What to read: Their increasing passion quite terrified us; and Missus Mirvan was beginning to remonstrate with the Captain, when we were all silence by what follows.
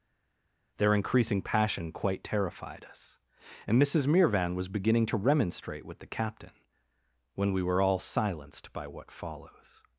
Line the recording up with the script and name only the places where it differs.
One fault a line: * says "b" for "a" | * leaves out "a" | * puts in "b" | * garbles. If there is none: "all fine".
* says "silenced" for "silence"